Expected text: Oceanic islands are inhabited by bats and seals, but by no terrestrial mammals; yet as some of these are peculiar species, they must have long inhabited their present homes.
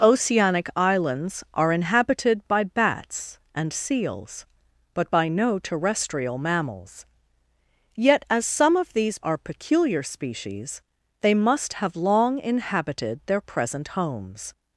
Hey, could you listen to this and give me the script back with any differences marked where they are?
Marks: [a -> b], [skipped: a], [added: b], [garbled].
Oceanic islands are inhabited by bats and seals, but by no terrestrial mammals; yet as some of these are peculiar species, they must have long inhabited their present homes.